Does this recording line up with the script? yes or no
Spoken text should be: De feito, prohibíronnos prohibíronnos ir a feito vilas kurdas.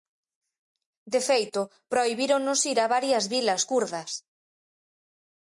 no